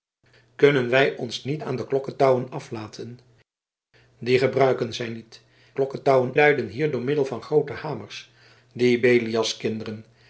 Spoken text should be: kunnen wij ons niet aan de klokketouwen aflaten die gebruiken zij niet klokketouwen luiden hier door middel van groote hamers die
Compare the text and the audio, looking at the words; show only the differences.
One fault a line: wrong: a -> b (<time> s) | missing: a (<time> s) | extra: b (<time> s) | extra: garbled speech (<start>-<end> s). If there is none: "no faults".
no faults